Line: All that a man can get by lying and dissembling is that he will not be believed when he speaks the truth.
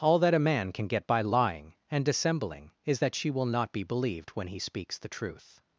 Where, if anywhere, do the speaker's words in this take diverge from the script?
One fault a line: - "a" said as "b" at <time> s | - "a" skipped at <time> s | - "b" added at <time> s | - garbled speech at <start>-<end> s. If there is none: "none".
- "he" said as "she" at 3.1 s